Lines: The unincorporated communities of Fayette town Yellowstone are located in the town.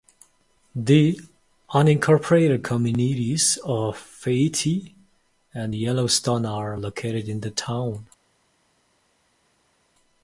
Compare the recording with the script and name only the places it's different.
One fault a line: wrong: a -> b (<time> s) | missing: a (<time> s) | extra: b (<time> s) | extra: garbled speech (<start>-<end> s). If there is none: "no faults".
wrong: town -> and (5.5 s)